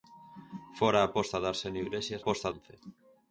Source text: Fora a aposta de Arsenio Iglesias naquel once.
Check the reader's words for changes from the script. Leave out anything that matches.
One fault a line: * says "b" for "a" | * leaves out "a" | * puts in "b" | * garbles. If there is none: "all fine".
* says "aposta" for "naquel"